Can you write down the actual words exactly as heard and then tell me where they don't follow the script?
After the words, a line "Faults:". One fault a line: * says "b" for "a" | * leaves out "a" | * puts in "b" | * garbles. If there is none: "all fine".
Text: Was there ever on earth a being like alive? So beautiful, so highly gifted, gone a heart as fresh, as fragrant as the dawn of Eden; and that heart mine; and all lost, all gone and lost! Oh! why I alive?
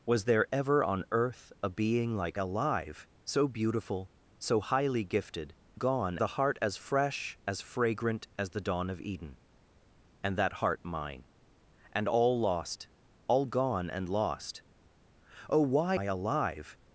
Was there ever on earth a being like alive? So beautiful, so highly gifted, gone a heart as fresh, as fragrant as the dawn of Eden; and that heart mine; and all lost, all gone and lost! Oh! why I alive?
Faults:
all fine